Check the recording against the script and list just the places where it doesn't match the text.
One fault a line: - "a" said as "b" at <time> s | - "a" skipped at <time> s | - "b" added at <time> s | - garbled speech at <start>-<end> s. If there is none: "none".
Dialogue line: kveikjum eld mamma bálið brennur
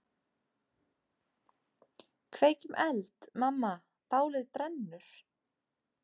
none